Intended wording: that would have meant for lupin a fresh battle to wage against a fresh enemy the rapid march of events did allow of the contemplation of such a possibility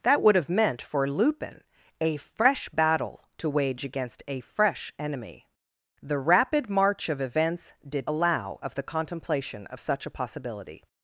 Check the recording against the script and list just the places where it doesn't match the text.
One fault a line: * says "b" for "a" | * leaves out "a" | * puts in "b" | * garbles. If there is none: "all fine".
all fine